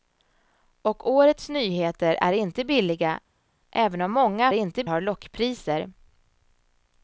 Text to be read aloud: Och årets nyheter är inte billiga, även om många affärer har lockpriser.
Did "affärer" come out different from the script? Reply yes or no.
yes